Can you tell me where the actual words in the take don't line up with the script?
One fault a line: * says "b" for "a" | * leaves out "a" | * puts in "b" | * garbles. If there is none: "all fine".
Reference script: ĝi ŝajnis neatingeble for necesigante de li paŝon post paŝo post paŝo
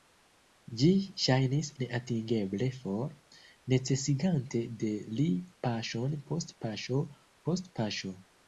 all fine